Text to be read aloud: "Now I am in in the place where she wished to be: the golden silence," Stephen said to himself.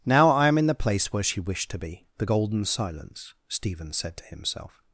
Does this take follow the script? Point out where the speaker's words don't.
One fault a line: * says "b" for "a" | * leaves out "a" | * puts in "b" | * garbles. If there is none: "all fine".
* leaves out "in"